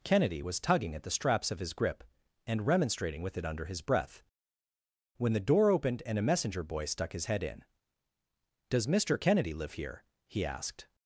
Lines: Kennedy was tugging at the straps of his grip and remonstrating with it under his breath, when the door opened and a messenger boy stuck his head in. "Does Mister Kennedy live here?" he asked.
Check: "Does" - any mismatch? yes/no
no